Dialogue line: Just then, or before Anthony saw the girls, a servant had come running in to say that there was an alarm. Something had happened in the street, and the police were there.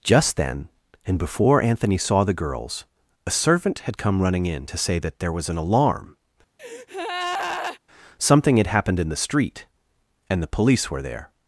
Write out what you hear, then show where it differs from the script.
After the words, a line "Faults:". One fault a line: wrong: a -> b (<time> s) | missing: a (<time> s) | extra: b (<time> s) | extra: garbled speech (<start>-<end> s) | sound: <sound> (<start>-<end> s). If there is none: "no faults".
Just then, and before Anthony saw the girls, a servant had come running in to say that there was an alarm. Something had happened in the street, and the police were there.
Faults:
wrong: or -> and (1.1 s)
sound: breath (6.6-7.8 s)